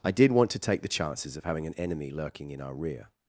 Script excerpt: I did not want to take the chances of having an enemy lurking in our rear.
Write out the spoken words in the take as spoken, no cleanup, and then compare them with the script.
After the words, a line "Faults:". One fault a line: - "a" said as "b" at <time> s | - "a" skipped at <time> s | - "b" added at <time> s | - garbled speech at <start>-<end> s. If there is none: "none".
I did want to take the chances of having an enemy lurking in our rear.
Faults:
- "not" skipped at 0.3 s